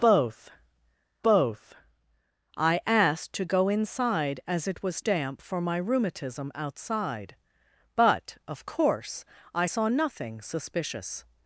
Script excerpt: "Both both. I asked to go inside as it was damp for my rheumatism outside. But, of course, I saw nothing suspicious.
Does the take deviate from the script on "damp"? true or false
false